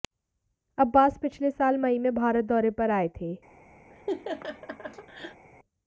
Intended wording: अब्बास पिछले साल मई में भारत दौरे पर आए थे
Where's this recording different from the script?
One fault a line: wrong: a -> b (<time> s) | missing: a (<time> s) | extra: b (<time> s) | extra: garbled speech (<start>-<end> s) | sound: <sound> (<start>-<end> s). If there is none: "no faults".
sound: laugh (3.9-5.5 s)